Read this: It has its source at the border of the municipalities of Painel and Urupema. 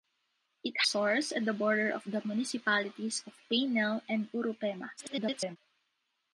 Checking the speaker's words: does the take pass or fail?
fail